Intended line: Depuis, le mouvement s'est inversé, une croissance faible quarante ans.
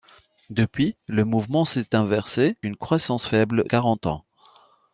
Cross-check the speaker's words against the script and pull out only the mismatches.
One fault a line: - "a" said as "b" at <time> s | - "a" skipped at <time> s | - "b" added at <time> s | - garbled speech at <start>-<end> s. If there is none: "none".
none